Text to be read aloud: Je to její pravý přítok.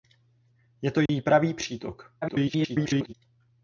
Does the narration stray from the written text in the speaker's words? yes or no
yes